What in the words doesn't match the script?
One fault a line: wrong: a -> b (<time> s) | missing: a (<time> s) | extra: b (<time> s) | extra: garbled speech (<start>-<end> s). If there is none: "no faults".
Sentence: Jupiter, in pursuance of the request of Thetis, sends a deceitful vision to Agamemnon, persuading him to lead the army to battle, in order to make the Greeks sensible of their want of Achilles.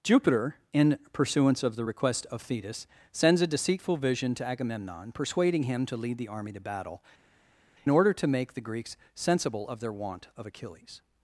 missing: in (7.0 s)